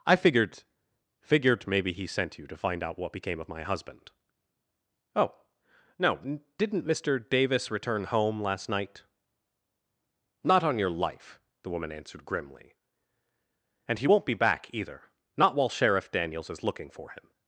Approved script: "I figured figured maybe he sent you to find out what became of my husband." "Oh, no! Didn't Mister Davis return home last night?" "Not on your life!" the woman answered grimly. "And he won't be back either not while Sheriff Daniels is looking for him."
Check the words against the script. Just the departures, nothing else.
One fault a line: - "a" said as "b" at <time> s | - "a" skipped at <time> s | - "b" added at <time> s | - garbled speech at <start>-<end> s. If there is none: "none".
none